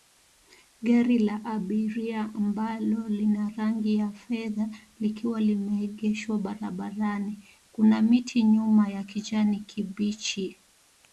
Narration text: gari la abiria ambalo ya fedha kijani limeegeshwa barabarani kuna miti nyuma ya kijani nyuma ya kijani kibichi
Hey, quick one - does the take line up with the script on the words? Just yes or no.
no